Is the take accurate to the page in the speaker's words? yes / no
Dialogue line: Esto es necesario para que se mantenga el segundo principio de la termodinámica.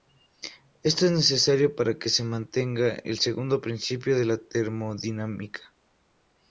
yes